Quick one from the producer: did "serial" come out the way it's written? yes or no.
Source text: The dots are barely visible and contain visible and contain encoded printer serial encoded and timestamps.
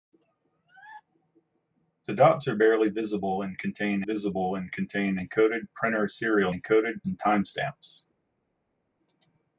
yes